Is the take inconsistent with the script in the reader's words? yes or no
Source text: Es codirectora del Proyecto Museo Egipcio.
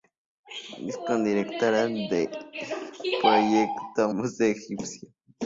no